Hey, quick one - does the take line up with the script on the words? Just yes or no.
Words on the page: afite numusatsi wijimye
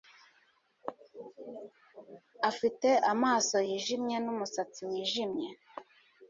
no